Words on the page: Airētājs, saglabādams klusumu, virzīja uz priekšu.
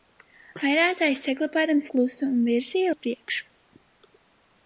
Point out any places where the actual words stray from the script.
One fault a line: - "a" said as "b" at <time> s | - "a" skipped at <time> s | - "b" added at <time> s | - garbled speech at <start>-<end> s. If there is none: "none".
none